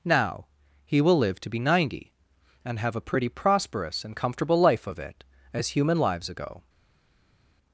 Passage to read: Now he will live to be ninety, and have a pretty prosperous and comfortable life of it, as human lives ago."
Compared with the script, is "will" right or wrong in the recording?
right